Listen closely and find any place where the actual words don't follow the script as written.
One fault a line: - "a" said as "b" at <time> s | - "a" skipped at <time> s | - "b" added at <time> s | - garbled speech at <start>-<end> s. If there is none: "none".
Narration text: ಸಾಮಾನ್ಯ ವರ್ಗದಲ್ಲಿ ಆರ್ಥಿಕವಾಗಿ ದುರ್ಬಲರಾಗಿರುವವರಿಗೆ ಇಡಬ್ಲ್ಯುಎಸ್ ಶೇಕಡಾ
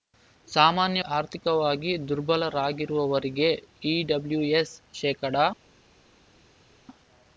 - "ವರ್ಗದಲ್ಲಿ" skipped at 1.0 s